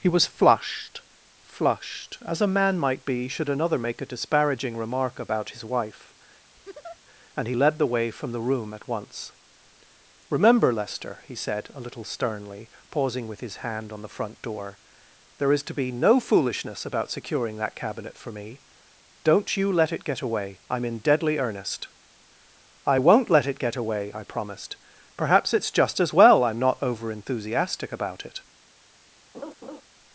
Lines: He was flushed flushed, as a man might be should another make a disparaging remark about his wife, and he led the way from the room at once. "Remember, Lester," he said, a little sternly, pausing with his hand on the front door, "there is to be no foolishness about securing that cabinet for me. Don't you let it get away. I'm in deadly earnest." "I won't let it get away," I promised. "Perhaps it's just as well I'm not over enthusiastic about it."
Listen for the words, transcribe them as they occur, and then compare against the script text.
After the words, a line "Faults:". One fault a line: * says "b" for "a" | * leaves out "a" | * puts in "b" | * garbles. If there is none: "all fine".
He was flushed flushed, as a man might be should another make a disparaging remark about his wife, and he led the way from the room at once. "Remember, Lester," he said, a little sternly, pausing with his hand on the front door, "there is to be no foolishness about securing that cabinet for me. Don't you let it get away. I'm in deadly earnest." "I won't let it get away," I promised. "Perhaps it's just as well I'm not over enthusiastic about it."
Faults:
all fine